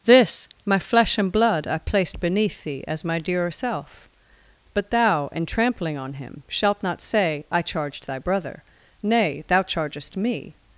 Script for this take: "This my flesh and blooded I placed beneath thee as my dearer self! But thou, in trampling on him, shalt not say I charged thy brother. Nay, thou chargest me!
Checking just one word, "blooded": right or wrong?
wrong